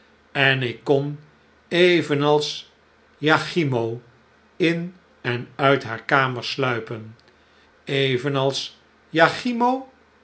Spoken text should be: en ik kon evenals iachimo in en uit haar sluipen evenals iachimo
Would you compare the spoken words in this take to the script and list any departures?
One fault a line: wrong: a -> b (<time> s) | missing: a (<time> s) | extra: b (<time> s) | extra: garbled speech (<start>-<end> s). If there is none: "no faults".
extra: kamer (6.0 s)